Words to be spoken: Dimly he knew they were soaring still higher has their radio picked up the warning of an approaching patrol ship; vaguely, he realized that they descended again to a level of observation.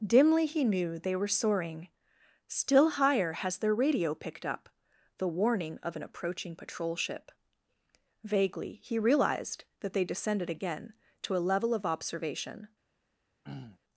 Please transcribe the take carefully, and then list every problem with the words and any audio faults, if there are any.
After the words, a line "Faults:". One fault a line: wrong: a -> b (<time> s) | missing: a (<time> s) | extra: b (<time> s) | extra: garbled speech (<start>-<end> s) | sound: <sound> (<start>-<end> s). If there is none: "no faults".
Dimly he knew they were soaring still higher has their radio picked up the warning of an approaching patrol ship; vaguely, he realized that they descended again to a level of observation.
Faults:
sound: throat clearing (13.4-13.8 s)